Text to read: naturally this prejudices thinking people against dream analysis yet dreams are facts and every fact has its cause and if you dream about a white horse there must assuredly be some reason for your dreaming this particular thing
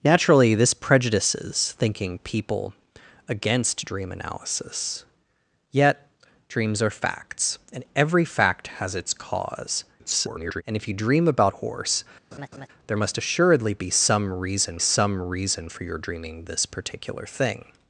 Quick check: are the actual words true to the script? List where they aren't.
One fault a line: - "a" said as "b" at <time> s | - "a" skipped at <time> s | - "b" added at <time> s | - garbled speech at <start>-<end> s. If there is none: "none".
- garbled speech at 10.0-10.6 s
- "a white" skipped at 11.5 s
- "some reason" added at 14.8 s